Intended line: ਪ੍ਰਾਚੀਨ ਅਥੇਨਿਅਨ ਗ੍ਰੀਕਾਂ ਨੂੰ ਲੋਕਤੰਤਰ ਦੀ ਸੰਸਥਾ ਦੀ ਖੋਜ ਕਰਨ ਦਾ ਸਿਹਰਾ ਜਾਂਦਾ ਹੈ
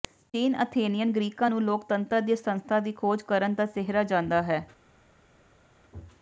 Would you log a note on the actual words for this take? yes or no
no